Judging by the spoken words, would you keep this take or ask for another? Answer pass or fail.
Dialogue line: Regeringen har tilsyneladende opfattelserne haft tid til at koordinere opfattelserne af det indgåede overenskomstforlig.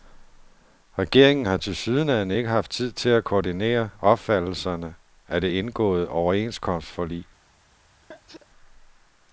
fail